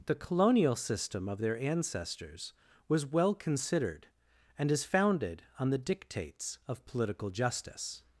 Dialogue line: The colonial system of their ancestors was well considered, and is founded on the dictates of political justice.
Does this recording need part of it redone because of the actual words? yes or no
no